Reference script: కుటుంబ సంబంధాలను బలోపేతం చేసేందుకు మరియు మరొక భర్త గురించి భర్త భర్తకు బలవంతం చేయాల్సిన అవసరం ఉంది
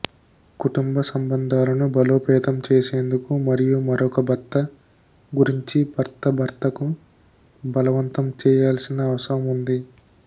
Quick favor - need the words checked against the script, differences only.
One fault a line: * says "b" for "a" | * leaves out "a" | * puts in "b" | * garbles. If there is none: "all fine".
all fine